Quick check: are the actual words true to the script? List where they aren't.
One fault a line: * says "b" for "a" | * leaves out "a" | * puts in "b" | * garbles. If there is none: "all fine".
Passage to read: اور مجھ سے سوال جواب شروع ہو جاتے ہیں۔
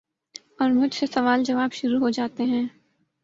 all fine